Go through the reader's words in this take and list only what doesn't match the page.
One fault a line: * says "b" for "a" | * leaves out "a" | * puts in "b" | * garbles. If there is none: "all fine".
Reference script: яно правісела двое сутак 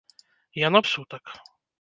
* leaves out "правісела двое"